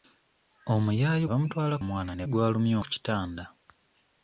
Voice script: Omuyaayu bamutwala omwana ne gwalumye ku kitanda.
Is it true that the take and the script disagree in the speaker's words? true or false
false